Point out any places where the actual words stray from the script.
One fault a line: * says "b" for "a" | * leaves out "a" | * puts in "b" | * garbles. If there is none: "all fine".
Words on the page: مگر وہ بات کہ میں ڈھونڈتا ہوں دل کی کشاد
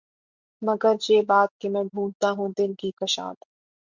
* says "یہ" for "وہ"